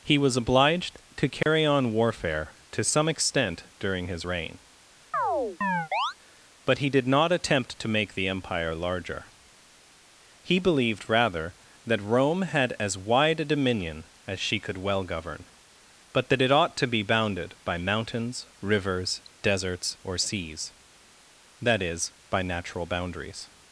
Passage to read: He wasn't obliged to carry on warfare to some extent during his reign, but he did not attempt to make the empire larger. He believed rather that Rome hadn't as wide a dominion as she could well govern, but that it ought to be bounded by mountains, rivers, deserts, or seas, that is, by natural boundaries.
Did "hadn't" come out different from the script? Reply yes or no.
yes